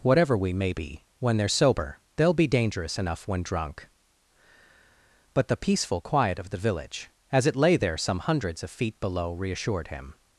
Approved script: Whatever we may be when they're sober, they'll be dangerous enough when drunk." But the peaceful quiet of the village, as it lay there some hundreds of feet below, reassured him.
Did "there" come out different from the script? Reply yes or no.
no